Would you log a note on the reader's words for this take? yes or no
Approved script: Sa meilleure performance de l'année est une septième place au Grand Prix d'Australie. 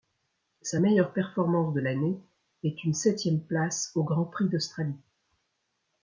no